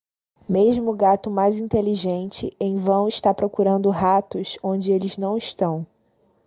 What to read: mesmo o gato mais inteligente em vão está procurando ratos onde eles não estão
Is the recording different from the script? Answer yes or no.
no